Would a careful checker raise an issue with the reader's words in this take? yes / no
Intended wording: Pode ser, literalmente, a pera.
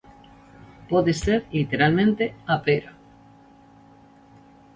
no